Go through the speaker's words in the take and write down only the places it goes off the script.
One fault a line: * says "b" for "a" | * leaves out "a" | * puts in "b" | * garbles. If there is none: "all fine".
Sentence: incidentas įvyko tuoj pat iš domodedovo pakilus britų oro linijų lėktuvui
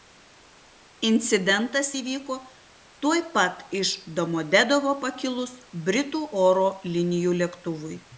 all fine